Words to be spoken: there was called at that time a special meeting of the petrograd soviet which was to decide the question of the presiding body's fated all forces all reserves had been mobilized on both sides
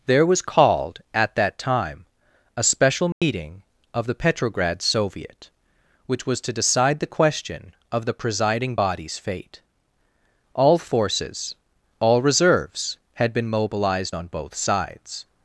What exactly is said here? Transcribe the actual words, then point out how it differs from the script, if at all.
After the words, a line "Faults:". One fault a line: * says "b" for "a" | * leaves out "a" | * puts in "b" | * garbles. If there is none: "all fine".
there was called at that time a special meeting of the petrograd soviet which was to decide the question of the presiding body's fate all forces all reserves had been mobilized on both sides
Faults:
* says "fate" for "fated"